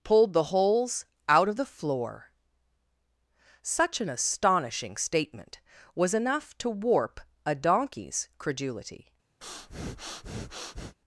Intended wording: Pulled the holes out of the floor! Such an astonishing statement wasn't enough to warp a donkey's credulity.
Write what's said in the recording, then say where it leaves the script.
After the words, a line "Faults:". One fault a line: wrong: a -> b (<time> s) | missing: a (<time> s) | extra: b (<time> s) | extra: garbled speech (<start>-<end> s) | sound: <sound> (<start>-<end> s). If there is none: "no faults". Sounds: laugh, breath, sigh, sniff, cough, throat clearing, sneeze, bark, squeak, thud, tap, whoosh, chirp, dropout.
Pulled the holes out of the floor! Such an astonishing statement was enough to warp a donkey's credulity.
Faults:
wrong: wasn't -> was (5.9 s)
sound: breath (9.4-11.0 s)